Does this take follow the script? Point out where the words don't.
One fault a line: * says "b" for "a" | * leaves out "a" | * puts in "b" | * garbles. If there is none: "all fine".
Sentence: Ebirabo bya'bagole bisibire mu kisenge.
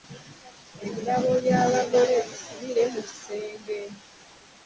all fine